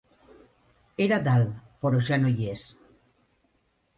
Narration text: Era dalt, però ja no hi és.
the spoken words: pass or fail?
pass